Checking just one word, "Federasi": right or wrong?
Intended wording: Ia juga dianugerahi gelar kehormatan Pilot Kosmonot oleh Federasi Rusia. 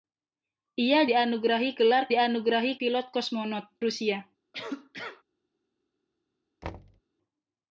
wrong